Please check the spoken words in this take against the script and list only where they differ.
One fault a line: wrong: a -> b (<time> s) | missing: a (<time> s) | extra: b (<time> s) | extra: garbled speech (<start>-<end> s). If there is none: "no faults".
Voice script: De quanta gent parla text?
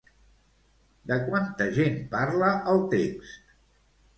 extra: el (2.7 s)